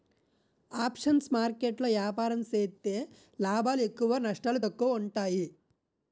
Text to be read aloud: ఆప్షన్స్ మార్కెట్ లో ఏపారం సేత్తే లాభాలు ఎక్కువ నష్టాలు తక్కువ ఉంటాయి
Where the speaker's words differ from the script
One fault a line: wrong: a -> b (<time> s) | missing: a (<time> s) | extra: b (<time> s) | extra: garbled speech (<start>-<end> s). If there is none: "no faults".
no faults